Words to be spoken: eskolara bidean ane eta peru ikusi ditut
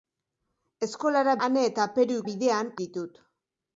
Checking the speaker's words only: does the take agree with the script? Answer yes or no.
no